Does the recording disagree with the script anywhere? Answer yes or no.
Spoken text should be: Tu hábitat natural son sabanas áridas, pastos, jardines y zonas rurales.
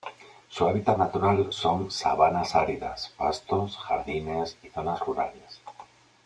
yes